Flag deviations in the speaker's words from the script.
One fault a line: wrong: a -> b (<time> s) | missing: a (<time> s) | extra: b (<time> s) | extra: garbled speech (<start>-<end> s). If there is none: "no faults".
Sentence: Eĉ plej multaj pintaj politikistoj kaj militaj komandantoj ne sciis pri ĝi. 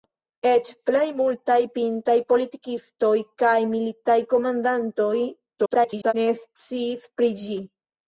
extra: garbled speech (5.6-6.1 s)